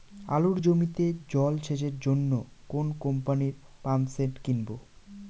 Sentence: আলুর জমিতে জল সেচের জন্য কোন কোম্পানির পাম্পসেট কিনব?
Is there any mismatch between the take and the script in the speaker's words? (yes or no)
no